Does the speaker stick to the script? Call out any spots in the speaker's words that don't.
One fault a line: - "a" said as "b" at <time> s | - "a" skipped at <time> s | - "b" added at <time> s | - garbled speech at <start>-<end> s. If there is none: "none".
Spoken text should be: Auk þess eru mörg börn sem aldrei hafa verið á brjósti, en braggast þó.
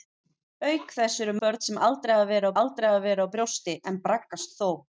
- "mörg" skipped at 1.4 s
- "aldrei hafa verið" added at 2.6 s